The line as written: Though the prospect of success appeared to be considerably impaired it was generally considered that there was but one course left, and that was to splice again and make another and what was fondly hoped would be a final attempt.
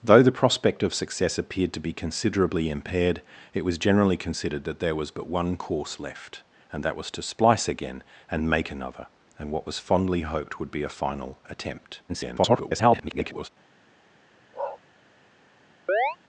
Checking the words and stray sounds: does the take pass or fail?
fail